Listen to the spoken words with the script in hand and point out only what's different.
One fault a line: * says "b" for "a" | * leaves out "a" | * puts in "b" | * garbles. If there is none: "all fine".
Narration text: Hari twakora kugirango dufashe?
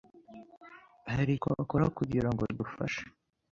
all fine